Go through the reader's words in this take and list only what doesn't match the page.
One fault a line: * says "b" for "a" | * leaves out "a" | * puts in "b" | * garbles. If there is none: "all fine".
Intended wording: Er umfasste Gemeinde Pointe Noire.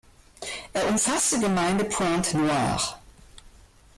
all fine